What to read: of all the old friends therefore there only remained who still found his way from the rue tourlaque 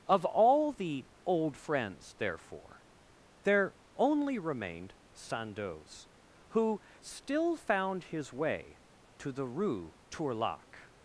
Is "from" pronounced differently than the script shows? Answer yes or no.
yes